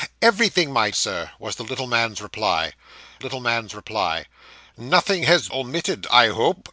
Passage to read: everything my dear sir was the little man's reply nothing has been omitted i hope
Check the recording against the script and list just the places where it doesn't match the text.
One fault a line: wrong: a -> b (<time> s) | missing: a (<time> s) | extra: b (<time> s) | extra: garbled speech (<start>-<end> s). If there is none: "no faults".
missing: dear (0.9 s)
extra: little man's reply (3.2 s)
missing: been (5.5 s)